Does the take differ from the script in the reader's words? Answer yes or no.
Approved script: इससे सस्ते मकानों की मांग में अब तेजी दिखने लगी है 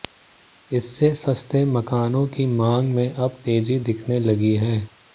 no